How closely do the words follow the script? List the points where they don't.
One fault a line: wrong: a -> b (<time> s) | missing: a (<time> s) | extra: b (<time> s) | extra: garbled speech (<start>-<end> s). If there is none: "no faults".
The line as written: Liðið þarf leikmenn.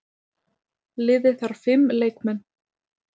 extra: fimm (1.7 s)